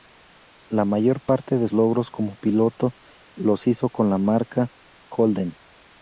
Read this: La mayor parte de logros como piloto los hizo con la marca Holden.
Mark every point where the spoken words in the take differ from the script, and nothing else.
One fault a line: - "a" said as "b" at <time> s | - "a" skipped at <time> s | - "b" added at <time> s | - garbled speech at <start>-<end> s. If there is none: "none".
none